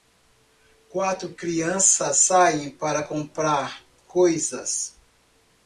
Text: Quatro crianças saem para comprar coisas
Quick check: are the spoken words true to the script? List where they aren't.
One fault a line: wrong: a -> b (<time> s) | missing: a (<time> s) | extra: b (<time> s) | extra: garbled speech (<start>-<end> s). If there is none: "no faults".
no faults